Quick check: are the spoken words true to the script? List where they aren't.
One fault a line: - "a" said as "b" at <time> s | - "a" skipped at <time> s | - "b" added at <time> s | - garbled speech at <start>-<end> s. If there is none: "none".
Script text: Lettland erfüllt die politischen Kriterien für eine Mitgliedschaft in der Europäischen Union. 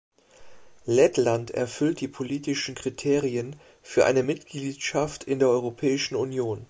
none